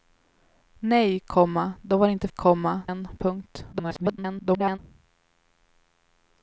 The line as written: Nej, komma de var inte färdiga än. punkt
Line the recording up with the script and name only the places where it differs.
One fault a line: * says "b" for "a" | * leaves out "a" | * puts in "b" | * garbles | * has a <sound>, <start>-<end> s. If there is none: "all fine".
* says "komma" for "färdiga"
* garbles